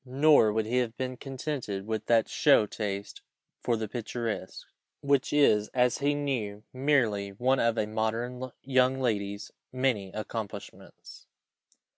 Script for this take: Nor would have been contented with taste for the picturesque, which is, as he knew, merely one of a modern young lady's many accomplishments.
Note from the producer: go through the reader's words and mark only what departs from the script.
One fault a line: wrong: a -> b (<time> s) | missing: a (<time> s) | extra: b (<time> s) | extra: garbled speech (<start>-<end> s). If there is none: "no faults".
extra: he (0.6 s)
extra: that show (2.1 s)